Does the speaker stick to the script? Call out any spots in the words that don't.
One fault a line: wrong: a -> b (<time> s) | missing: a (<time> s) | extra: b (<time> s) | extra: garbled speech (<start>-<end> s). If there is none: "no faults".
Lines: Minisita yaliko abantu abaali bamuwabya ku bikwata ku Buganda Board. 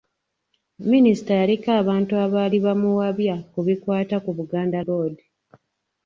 no faults